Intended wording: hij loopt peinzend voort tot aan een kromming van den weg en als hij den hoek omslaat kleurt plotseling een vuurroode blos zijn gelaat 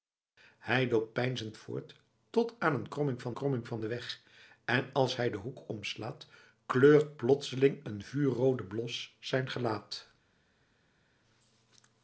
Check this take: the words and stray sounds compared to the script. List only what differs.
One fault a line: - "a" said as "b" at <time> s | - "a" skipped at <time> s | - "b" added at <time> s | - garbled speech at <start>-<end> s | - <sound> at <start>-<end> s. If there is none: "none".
- "kromming van" added at 3.3 s